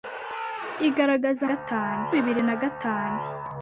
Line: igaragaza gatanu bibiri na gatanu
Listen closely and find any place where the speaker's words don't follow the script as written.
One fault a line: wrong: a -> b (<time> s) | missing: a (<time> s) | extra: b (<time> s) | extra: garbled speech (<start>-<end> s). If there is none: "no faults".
no faults